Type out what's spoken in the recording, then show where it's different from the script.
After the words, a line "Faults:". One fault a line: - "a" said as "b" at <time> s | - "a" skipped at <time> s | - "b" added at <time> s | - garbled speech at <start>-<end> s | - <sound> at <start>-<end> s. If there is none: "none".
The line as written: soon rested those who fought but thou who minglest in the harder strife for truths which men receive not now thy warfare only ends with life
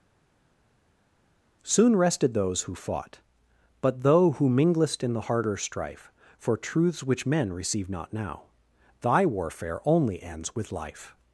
soon rested those who fought but though who minglest in the harder strife for truths which men receive not now thy warfare only ends with life
Faults:
- "thou" said as "though" at 4.0 s